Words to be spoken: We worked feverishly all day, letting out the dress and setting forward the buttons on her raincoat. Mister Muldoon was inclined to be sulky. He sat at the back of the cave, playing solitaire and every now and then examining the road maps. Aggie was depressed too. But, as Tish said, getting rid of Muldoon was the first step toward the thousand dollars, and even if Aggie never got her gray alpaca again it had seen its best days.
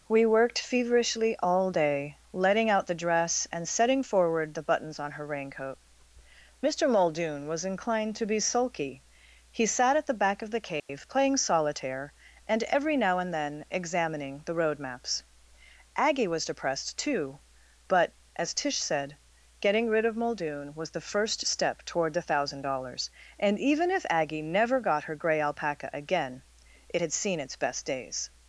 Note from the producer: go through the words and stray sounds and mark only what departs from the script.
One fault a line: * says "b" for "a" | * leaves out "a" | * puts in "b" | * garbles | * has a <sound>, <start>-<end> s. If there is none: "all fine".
* has a dropout, 10.8-10.9 s